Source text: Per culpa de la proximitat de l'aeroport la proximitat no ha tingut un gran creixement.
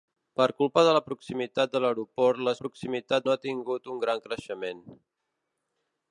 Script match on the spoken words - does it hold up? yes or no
yes